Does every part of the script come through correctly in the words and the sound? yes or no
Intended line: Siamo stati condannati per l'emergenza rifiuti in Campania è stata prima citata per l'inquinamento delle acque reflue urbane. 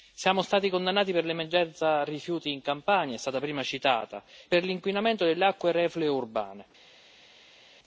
yes